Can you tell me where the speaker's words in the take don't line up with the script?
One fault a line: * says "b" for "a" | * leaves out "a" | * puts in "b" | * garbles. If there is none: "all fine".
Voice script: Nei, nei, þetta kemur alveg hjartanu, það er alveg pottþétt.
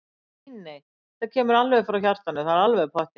* puts in "frá"